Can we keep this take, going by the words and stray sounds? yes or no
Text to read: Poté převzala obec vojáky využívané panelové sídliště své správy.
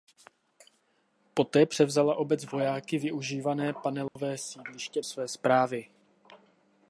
no